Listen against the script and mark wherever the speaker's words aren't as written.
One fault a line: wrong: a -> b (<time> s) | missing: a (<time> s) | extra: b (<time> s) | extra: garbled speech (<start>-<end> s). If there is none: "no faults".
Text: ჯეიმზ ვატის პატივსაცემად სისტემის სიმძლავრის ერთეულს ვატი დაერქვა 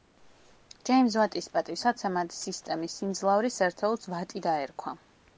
no faults